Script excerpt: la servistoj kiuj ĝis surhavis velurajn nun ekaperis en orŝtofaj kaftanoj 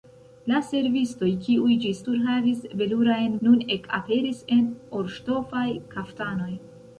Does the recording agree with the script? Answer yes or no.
yes